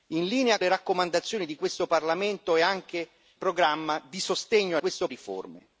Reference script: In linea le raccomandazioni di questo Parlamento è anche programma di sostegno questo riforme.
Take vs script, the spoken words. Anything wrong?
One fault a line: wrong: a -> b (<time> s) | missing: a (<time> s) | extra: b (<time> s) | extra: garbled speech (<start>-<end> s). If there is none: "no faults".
no faults